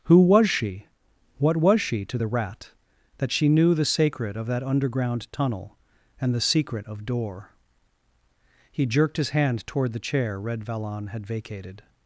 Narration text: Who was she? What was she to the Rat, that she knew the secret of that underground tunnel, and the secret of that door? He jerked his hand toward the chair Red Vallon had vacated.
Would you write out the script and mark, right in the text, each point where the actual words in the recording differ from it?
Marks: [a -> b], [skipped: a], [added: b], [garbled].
Who was she? What was she to the Rat, that she knew the [secret -> sacred] of that underground tunnel, and the secret of [skipped: that] door? He jerked his hand toward the chair Red Vallon had vacated.